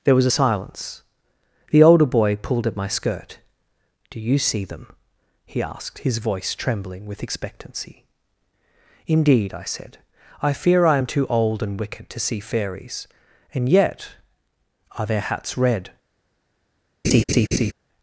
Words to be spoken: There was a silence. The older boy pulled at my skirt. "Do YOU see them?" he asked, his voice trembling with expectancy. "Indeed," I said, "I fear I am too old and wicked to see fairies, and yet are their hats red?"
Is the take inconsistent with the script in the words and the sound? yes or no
yes